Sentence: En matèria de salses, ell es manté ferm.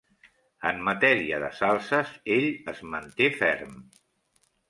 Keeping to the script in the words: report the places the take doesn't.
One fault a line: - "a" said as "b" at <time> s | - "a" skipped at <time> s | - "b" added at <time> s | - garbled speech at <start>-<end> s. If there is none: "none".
none